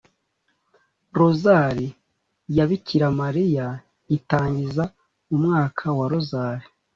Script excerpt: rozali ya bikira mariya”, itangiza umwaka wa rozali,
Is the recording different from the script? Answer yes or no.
no